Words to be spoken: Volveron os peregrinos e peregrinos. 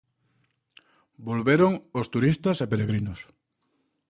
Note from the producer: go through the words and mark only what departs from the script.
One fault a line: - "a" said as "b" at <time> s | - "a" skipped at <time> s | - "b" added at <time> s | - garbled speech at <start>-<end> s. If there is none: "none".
- "peregrinos" said as "turistas" at 2.1 s